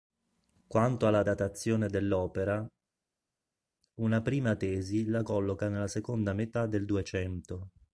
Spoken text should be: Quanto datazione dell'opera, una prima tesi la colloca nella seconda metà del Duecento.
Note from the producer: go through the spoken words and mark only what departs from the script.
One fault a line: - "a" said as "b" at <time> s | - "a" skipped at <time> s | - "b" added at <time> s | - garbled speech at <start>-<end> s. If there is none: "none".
- "alla" added at 1.1 s